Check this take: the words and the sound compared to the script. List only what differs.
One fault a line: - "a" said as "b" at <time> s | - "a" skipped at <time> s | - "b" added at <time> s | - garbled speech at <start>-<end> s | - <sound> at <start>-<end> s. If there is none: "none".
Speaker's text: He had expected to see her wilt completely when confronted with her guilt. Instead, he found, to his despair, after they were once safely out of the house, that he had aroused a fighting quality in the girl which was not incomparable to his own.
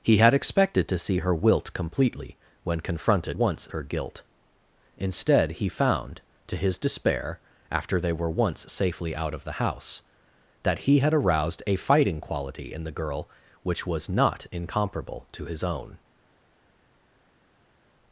- "with" said as "once" at 3.3 s